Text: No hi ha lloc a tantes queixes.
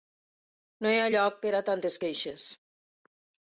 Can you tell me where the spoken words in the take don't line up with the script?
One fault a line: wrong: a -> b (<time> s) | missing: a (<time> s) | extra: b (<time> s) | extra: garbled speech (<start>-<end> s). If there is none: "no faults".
extra: per (1.4 s)